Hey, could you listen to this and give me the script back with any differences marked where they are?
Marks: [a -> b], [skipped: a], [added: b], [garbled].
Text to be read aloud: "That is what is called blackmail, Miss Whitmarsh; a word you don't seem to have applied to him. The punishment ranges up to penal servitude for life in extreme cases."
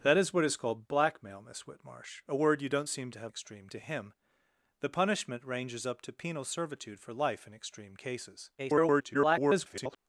"That is what is called blackmail, Miss Whitmarsh; a word you don't seem to have [applied -> extreme] to him. The punishment ranges up to penal servitude for life in extreme cases." [garbled]